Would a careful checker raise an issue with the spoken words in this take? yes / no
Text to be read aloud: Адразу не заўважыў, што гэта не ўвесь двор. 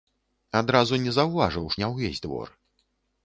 yes